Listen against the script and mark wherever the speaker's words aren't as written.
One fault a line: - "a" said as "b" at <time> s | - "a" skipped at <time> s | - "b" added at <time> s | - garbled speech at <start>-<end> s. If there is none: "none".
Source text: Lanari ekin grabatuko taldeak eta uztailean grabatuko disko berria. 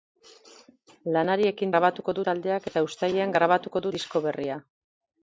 none